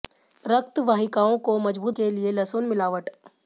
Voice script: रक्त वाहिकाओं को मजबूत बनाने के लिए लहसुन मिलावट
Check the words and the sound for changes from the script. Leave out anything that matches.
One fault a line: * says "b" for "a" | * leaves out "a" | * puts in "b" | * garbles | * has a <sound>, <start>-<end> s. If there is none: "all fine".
* leaves out "बनाने"